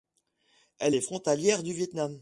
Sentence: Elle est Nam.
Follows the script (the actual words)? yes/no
no